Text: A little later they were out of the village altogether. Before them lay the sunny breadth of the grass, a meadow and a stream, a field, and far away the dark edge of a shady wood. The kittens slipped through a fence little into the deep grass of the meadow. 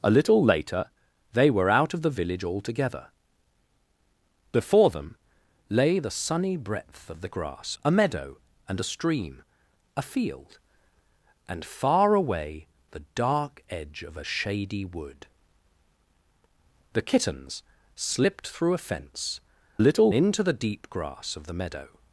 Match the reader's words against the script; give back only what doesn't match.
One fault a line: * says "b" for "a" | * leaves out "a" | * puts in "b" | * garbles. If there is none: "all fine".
all fine